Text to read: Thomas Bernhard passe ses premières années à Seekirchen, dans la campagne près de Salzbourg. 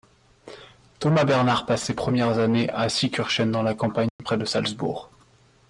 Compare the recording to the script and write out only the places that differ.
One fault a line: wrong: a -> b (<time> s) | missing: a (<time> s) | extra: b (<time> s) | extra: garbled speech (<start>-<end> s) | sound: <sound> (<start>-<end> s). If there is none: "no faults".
sound: dropout (4.1-4.2 s)